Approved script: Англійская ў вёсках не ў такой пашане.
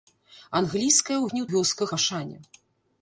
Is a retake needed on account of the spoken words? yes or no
yes